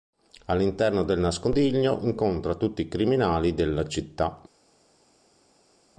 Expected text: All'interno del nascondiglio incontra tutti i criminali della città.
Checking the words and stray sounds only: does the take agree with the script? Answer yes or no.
yes